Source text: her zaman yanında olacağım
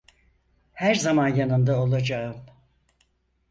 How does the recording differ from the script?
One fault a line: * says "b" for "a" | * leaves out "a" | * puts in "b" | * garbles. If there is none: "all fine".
all fine